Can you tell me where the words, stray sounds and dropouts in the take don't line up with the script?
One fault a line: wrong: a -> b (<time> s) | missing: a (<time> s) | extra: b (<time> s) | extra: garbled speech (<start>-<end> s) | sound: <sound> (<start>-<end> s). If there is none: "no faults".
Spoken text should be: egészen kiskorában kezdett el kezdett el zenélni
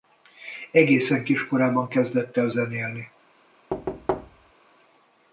missing: kezdett el (2.5 s)
sound: thud (3.7-4.5 s)